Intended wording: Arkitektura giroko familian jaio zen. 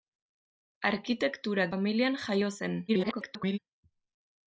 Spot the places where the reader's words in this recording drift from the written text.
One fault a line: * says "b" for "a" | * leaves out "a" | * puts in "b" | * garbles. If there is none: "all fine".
* leaves out "giroko"
* garbles